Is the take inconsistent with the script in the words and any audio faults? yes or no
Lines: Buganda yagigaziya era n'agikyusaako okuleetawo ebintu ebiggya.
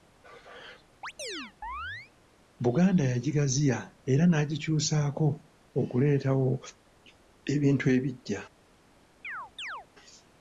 yes